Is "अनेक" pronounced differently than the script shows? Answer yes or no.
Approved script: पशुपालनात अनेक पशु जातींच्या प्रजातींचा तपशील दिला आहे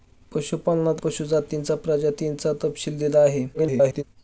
yes